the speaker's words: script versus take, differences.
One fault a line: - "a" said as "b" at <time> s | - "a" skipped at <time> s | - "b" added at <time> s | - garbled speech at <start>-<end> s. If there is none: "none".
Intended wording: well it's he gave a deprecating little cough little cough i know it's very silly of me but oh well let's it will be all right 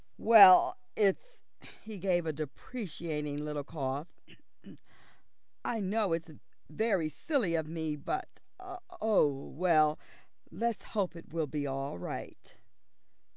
- "little cough" skipped at 4.1 s
- "hope" added at 10.9 s